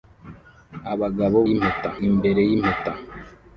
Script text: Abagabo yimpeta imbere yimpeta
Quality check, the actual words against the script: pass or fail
pass